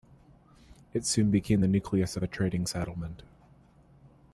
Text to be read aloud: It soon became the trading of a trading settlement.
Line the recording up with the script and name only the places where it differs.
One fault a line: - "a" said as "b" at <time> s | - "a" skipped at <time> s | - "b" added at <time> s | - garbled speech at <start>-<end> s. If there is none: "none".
- "trading" said as "nucleus" at 1.7 s